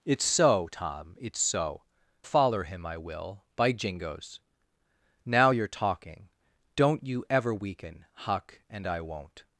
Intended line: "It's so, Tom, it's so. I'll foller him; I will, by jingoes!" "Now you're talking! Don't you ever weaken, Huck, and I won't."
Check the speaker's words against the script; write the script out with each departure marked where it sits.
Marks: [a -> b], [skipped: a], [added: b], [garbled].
"It's so, Tom, it's so. [skipped: I'll] foller him; I will, by jingoes!" "Now you're talking! Don't you ever weaken, Huck, and I won't."